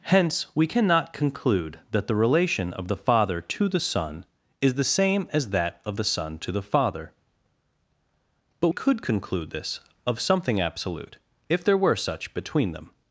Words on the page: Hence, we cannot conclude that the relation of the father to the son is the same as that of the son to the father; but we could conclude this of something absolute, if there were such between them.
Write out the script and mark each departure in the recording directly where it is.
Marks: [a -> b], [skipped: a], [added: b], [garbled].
Hence, we cannot conclude that the relation of the father to the son is the same as that of the son to the father; but [skipped: we] could conclude this of something absolute, if there were such between them.